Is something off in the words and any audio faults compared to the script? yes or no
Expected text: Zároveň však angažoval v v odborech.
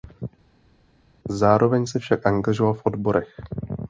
yes